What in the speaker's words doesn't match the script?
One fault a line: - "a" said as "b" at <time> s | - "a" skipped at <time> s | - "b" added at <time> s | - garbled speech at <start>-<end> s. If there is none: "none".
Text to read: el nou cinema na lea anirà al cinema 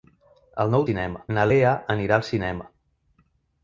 none